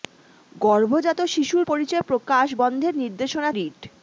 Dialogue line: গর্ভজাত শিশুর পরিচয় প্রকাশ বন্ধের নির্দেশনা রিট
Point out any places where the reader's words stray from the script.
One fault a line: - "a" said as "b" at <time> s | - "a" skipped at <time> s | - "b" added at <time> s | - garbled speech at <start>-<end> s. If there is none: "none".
none